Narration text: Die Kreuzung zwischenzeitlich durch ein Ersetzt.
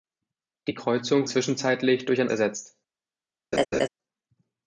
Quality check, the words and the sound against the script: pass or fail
fail